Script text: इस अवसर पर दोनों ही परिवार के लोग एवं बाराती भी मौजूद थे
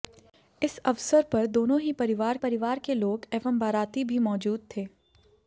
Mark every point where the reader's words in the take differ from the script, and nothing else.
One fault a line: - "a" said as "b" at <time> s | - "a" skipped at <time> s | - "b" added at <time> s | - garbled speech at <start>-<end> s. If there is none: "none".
- "परिवार" added at 2.4 s